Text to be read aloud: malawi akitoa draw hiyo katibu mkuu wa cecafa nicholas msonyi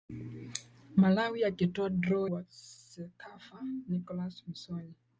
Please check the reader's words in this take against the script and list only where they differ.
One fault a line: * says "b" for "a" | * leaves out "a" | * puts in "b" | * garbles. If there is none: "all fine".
* leaves out "hiyo katibu mkuu"